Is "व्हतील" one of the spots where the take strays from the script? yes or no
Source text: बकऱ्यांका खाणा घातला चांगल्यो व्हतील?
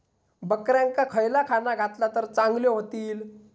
no